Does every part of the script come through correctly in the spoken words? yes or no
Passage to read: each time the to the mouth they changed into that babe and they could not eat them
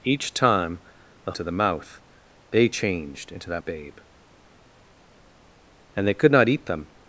yes